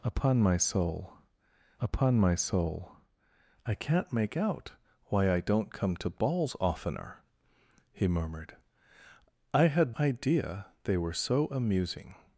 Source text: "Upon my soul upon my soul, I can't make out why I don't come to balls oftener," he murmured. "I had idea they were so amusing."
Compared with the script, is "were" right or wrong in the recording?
right